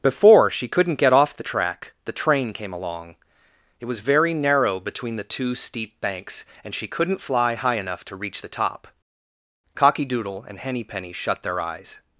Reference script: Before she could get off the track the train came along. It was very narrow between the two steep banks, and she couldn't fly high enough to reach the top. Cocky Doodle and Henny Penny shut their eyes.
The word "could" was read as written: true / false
false